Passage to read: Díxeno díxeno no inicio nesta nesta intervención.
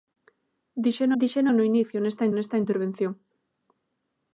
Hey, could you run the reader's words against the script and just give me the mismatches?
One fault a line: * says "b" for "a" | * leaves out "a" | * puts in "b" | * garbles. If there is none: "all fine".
all fine